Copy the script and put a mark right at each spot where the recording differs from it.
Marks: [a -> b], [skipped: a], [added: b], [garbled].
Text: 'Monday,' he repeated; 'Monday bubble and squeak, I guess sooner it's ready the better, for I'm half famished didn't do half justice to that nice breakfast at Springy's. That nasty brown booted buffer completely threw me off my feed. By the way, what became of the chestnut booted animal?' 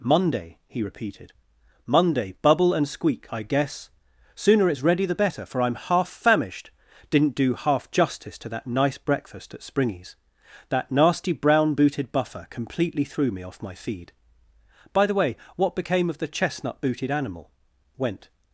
'Monday,' he repeated; 'Monday bubble and squeak, I guess sooner it's ready the better, for I'm half famished didn't do half justice to that nice breakfast at Springy's. That nasty brown booted buffer completely threw me off my feed. By the way, what became of the chestnut booted animal?' [added: Went]